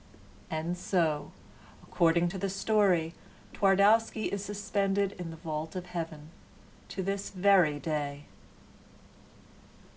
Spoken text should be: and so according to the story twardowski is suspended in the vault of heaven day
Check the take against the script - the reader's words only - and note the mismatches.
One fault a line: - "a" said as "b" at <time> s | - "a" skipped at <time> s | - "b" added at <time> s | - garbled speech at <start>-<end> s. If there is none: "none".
- "to this very" added at 6.9 s